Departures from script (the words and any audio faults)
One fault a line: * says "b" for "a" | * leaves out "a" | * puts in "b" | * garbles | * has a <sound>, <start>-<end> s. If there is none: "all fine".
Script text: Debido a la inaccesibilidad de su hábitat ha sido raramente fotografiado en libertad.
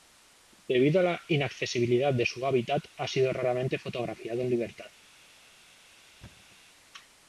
* has a thud, 6.2-6.6 s